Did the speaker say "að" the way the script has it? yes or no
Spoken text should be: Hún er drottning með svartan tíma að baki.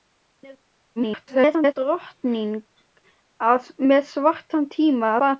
no